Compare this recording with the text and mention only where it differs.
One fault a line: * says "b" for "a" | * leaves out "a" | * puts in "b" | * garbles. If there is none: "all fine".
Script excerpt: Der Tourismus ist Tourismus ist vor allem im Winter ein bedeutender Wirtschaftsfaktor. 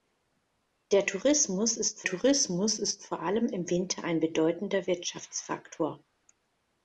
all fine